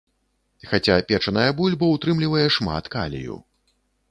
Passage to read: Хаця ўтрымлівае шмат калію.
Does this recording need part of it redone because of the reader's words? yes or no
yes